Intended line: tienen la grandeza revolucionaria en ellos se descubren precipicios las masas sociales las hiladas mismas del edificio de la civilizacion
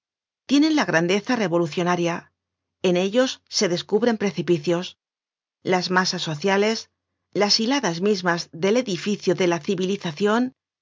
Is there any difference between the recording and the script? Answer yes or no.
no